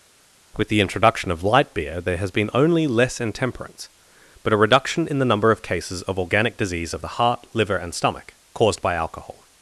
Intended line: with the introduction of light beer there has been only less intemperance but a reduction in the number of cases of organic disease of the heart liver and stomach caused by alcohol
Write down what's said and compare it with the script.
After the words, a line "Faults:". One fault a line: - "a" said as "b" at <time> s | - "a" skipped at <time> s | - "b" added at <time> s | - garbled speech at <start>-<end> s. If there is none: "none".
with the introduction of light beer there has been only less intemperance but a reduction in the number of cases of organic disease of the heart liver and stomach caused by alcohol
Faults:
none